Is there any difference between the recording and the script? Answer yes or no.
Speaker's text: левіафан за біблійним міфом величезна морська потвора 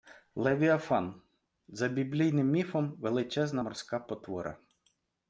no